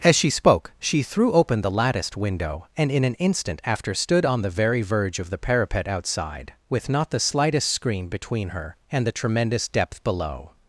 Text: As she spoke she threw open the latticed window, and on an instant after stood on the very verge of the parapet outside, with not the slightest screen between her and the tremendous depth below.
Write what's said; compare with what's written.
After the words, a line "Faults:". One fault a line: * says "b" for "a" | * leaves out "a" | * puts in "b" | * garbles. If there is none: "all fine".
As she spoke she threw open the latticed window, and in an instant after stood on the very verge of the parapet outside, with not the slightest screen between her and the tremendous depth below.
Faults:
* says "in" for "on"